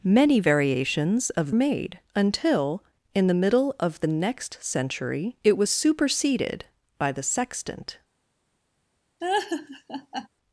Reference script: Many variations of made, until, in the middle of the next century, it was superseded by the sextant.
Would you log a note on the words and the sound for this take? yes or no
yes